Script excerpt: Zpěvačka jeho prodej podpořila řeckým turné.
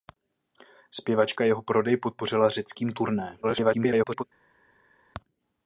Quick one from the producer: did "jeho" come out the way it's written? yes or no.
yes